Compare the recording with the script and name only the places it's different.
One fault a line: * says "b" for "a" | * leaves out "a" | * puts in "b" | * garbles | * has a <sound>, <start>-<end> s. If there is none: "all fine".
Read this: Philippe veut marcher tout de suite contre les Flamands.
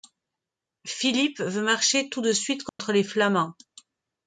* has a dropout, 2.7-2.8 s